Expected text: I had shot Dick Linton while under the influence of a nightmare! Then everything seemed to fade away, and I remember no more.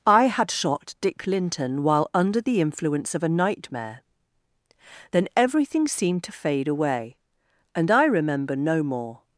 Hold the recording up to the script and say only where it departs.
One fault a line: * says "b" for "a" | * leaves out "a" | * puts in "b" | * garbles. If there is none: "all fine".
all fine